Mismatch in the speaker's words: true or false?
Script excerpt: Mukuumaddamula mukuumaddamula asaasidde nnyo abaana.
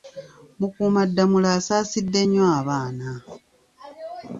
true